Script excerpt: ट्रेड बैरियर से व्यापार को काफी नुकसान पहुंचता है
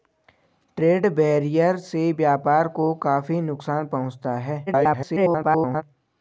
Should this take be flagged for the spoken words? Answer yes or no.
yes